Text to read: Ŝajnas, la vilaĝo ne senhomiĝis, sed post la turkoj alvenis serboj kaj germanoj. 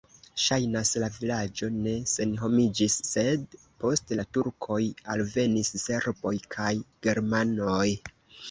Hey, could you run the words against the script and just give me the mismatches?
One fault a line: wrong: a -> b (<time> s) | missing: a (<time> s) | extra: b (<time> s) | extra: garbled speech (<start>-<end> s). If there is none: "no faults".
no faults